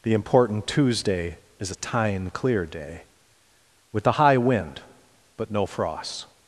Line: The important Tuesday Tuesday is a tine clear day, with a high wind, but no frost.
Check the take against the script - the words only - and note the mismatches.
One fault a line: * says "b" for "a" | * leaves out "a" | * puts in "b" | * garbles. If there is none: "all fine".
* leaves out "Tuesday"